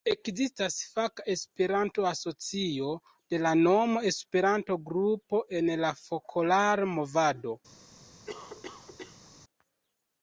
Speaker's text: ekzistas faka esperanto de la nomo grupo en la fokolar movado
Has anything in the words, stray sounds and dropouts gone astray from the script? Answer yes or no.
yes